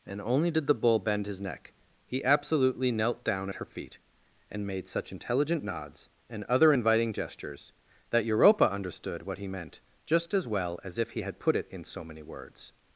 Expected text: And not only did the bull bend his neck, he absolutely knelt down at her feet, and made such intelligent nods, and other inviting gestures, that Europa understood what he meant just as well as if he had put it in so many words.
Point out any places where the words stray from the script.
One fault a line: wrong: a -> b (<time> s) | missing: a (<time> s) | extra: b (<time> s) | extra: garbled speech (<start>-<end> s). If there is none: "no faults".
missing: not (0.2 s)